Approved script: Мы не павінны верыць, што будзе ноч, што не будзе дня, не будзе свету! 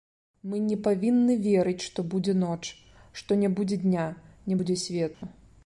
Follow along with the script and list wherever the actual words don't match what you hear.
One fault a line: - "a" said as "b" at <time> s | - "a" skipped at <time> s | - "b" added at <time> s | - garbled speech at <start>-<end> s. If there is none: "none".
none